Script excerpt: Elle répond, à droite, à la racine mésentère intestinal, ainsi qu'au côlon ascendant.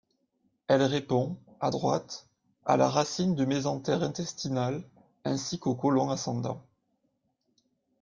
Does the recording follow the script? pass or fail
fail